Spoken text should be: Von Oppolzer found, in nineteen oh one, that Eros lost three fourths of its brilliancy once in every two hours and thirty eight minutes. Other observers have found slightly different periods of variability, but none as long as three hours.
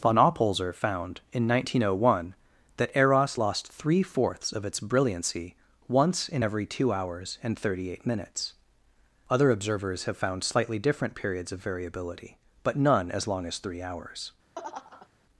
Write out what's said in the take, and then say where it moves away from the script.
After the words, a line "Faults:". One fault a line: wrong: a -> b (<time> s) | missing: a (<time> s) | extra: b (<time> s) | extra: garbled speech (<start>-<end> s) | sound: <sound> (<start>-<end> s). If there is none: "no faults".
Von Oppolzer found, in nineteen oh one, that Eros lost three fourths of its brilliancy once in every two hours and thirty eight minutes. Other observers have found slightly different periods of variability, but none as long as three hours.
Faults:
sound: laugh (14.5-15.1 s)